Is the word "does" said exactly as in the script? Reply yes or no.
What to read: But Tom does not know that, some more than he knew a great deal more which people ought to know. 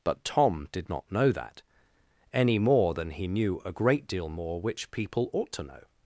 no